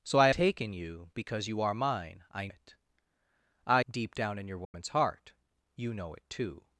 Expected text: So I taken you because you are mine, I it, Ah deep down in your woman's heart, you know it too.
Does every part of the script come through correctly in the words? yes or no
yes